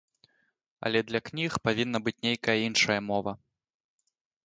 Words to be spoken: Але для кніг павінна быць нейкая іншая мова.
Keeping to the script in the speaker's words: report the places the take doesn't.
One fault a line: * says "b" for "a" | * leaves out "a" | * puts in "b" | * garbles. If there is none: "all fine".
all fine